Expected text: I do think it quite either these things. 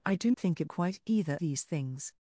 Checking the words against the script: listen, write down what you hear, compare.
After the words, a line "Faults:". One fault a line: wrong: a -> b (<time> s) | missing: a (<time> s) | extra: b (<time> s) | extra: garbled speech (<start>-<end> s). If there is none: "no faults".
I do think it quite either these things.
Faults:
no faults